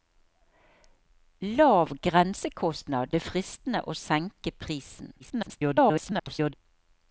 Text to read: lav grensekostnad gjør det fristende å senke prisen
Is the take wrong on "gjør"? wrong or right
wrong